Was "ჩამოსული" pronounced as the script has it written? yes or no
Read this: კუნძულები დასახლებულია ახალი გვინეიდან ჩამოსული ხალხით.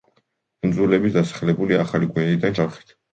no